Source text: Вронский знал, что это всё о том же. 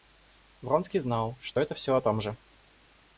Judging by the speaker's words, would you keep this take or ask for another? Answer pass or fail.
pass